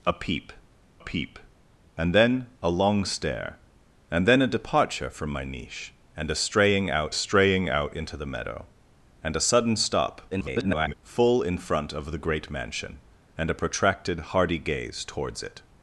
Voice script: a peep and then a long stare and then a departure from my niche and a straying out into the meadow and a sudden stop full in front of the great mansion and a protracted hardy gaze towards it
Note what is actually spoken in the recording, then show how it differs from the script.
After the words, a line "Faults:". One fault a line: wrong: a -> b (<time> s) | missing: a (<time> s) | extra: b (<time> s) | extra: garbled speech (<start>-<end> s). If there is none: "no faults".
a peep peep and then a long stare and then a departure from my niche and a straying out straying out into the meadow and a sudden stop [garbled] full in front of the great mansion and a protracted hardy gaze towards it
Faults:
extra: peep (1.0 s)
extra: straying out (7.1 s)
extra: garbled speech (10.3-10.9 s)